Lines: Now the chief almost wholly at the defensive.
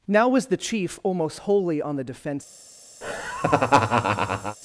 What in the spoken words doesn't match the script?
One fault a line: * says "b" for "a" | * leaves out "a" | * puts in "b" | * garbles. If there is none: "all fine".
* puts in "was"
* says "on" for "at"